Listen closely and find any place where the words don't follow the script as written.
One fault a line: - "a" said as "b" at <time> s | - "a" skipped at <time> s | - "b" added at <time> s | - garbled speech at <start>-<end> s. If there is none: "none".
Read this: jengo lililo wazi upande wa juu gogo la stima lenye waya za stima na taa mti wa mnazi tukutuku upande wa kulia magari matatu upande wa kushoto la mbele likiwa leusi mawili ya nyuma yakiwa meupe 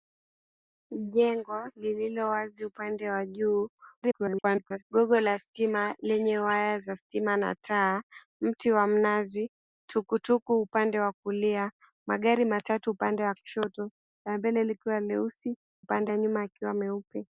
- garbled speech at 4.0-4.8 s
- "mawili" said as "upande" at 15.8 s